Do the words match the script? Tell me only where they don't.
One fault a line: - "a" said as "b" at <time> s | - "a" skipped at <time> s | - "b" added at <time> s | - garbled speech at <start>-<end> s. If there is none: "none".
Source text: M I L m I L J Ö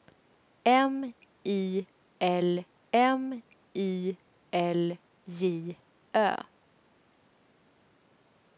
none